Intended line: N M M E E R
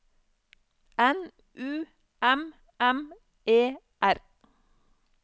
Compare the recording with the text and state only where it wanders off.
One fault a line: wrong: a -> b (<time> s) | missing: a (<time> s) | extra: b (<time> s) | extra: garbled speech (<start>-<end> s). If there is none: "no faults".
extra: U (1.5 s)
missing: E (3.8 s)